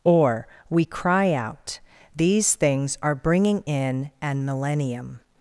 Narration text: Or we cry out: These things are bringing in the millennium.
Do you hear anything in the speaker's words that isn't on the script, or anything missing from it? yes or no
yes